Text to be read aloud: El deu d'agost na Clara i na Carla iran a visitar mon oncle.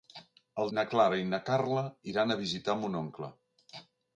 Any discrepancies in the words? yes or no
yes